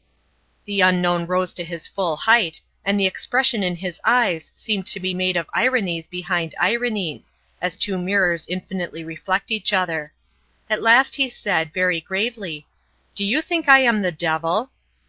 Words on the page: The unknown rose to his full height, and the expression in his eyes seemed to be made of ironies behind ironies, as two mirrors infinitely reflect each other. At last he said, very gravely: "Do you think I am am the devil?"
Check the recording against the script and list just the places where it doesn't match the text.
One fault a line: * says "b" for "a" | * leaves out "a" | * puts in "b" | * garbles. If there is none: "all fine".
* leaves out "am"